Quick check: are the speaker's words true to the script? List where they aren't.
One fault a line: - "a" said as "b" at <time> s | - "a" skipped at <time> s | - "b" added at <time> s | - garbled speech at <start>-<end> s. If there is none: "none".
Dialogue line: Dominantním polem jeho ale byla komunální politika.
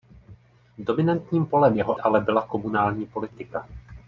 none